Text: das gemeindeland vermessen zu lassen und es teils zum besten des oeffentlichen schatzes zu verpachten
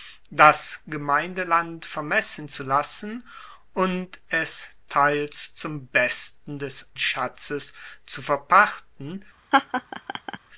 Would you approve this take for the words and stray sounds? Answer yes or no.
no